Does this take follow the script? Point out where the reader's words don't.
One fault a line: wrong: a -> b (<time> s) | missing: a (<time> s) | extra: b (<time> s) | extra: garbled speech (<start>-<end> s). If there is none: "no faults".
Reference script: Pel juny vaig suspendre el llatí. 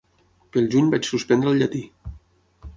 no faults